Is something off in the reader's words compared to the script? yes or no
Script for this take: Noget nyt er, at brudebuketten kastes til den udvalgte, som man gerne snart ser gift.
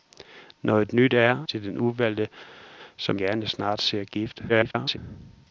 yes